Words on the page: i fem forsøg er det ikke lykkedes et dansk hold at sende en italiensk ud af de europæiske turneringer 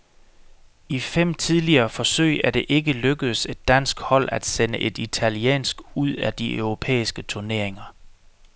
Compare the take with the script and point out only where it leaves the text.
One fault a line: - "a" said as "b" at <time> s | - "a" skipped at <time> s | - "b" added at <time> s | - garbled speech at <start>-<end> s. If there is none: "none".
- "tidligere" added at 1.3 s
- "en" said as "et" at 4.8 s